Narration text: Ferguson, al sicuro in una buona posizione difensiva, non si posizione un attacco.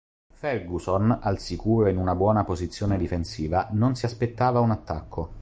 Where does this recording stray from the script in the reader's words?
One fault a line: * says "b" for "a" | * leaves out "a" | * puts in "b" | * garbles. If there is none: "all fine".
* says "aspettava" for "posizione"